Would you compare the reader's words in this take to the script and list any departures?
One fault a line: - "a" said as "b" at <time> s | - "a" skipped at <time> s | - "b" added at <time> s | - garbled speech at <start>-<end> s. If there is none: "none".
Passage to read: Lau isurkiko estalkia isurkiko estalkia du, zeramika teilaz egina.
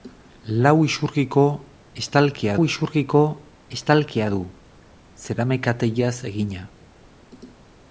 none